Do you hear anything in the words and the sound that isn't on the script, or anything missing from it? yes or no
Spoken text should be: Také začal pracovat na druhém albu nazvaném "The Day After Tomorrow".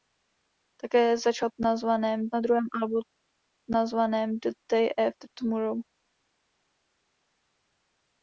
yes